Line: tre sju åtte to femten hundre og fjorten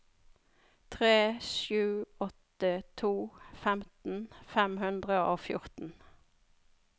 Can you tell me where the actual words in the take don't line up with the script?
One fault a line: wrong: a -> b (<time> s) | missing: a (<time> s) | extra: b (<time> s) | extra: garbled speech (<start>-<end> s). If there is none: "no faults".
extra: fem (4.5 s)